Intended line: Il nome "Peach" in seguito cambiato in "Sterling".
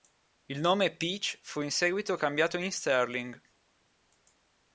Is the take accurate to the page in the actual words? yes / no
no